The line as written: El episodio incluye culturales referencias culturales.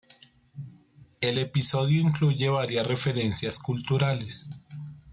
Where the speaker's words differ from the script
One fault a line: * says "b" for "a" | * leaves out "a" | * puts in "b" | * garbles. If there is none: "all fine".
* says "varias" for "culturales"